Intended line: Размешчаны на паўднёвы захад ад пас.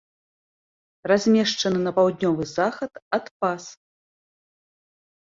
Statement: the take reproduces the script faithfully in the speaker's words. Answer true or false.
true